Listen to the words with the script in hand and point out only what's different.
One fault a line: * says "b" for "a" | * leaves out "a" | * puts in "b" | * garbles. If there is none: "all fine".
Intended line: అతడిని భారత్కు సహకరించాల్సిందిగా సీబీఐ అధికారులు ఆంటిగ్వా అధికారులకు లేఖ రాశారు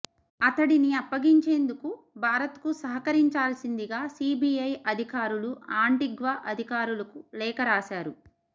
* puts in "అప్పగించేందుకు"